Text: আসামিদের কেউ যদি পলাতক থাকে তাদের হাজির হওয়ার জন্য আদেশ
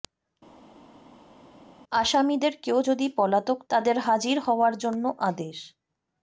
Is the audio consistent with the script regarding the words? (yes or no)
no